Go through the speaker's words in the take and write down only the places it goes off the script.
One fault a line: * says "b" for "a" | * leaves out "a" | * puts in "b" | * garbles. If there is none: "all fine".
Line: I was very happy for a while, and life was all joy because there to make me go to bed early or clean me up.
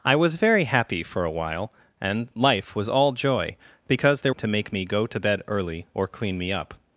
all fine